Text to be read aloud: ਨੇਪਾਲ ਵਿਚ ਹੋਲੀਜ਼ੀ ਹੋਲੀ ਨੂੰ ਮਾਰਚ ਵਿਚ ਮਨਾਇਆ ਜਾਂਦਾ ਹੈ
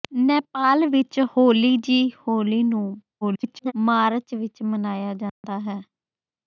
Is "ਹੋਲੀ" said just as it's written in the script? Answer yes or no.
yes